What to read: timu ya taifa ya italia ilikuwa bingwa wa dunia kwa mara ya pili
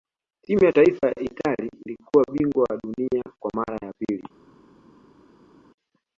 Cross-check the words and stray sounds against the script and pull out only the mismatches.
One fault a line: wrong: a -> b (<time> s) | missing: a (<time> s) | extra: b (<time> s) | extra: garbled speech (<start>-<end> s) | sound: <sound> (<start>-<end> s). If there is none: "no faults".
no faults